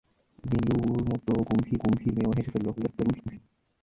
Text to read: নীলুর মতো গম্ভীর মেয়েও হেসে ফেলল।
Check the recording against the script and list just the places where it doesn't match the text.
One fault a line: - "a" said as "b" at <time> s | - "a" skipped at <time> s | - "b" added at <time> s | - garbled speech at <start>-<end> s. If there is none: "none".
- "গম্ভীর" added at 1.8 s
- garbled speech at 2.8-3.4 s